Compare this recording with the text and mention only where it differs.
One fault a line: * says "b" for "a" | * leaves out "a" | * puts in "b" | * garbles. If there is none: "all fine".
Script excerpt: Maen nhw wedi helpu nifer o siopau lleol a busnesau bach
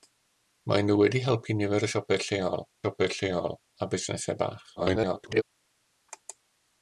* puts in "siopau lleol"
* garbles